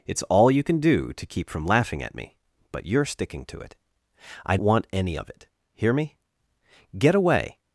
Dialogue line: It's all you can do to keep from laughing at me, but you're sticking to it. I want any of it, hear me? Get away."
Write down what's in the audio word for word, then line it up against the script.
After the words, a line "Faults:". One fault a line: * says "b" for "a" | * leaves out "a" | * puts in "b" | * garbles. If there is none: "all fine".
It's all you can do to keep from laughing at me, but you're sticking to it. I want any of it, hear me? Get away."
Faults:
all fine